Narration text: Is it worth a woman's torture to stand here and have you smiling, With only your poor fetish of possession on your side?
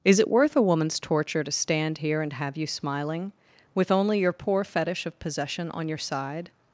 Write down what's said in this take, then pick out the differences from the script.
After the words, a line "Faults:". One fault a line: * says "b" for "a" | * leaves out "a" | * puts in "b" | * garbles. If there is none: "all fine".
Is it worth a woman's torture to stand here and have you smiling, With only your poor fetish of possession on your side?
Faults:
all fine